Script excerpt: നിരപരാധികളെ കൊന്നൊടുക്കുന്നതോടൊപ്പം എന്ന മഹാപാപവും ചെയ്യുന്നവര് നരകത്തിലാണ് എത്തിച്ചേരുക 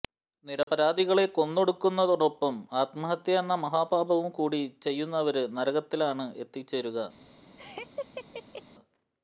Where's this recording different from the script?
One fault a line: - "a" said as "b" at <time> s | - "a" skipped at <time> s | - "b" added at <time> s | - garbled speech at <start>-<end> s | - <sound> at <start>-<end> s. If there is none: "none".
- dropout at 0.6-0.7 s
- "ആത്മഹത്യ" added at 2.7 s
- "കൂടി" added at 4.3 s
- laugh at 7.6-8.6 s